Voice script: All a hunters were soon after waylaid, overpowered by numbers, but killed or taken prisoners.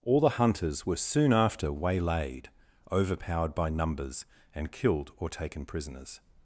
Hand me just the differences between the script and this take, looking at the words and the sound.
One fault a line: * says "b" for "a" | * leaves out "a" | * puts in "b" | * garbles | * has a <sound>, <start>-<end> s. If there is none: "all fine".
* says "the" for "a"
* says "and" for "but"